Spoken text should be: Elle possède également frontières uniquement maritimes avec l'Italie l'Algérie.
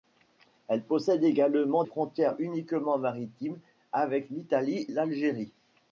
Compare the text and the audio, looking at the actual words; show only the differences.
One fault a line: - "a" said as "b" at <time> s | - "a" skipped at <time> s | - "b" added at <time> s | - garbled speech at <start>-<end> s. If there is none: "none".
none